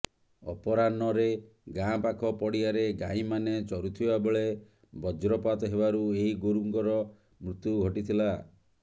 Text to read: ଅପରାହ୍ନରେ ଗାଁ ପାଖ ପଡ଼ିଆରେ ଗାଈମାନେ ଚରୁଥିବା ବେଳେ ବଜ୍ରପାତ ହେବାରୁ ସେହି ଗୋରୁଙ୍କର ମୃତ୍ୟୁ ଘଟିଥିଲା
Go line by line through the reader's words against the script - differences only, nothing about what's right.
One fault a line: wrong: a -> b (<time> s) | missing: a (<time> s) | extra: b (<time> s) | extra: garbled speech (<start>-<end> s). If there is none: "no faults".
wrong: ସେହି -> ଏହି (6.2 s)